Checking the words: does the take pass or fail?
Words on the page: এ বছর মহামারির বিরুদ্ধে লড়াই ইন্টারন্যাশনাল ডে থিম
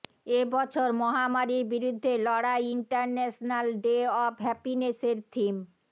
fail